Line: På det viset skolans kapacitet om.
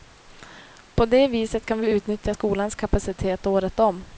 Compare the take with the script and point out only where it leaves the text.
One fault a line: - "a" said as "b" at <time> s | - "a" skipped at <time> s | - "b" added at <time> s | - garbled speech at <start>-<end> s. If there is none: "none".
- "kan vi utnyttja" added at 1.6 s
- "året" added at 3.5 s